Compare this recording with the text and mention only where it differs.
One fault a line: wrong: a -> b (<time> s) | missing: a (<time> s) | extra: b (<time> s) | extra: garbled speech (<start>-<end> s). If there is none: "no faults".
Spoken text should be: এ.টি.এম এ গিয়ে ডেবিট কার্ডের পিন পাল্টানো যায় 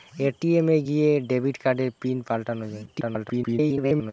extra: garbled speech (2.9-4.1 s)